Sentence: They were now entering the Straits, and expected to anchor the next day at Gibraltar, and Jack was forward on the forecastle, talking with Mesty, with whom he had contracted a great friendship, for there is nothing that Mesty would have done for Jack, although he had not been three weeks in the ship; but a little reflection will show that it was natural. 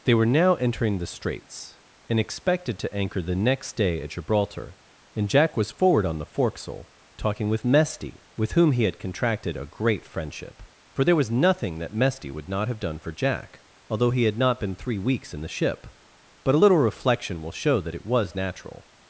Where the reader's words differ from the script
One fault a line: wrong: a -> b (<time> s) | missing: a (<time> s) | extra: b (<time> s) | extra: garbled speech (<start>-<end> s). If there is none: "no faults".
wrong: is -> was (11.2 s)
extra: not (12.5 s)